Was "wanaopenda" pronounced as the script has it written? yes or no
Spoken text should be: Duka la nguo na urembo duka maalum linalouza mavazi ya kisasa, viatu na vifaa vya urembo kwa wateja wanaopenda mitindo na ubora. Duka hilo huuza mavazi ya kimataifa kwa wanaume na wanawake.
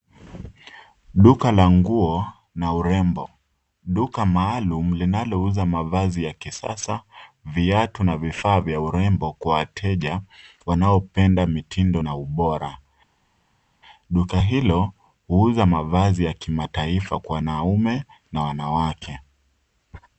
yes